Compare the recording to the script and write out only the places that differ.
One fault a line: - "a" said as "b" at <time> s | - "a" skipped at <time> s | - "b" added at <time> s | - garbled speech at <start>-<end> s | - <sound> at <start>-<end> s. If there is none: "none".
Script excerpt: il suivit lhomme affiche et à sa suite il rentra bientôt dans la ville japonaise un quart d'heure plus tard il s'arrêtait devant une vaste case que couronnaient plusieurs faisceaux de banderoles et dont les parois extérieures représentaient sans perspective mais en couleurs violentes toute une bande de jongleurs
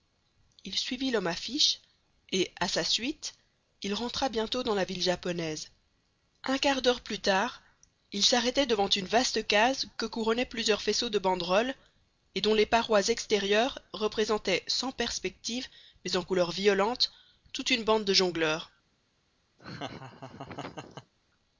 - laugh at 19.6-21.1 s